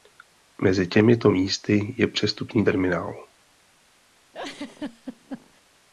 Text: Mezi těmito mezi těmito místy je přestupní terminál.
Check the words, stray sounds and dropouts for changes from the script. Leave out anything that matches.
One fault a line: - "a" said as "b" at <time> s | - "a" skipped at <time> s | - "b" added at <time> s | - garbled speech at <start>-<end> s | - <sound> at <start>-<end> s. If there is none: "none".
- "mezi těmito" skipped at 1.3 s
- laugh at 4.3-5.6 s